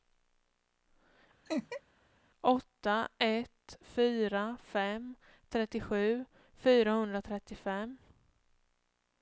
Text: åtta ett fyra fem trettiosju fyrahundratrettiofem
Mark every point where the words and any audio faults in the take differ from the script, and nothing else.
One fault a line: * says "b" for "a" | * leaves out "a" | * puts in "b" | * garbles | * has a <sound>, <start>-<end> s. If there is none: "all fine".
* has a laugh, 1.5-1.8 s